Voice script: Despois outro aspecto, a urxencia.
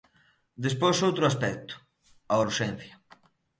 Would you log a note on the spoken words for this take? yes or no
no